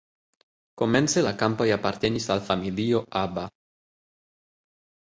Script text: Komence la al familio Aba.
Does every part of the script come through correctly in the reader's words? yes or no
no